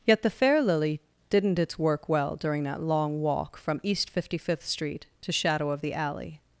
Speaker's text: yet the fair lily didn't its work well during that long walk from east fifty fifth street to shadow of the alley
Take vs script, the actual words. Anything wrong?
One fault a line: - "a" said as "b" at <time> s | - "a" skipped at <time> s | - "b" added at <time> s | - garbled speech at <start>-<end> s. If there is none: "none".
none